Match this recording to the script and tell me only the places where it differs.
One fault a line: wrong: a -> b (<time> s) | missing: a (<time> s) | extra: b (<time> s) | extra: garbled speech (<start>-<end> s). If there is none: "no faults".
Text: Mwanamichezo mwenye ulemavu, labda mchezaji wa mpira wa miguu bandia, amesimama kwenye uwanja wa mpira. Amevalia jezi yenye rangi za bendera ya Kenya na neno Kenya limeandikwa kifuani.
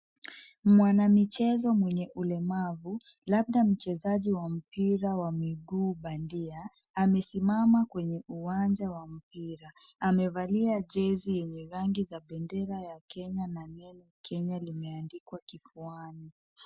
no faults